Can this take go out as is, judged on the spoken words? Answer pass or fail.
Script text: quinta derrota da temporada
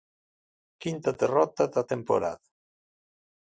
pass